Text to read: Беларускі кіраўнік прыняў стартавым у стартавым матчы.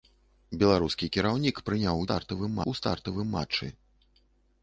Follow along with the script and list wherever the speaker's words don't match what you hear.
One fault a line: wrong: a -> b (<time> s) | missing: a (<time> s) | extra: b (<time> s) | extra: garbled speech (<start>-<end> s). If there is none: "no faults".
no faults